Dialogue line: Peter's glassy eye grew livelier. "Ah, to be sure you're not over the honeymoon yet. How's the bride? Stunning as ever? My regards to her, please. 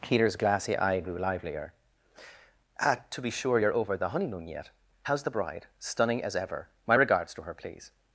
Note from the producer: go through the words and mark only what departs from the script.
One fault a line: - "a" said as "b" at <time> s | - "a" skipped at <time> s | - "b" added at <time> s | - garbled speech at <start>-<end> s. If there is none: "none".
- "not" skipped at 3.7 s